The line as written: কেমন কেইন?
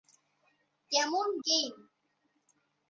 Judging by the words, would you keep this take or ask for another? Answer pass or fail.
pass